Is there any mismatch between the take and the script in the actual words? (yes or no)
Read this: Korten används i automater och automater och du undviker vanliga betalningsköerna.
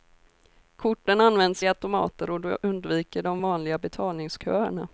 yes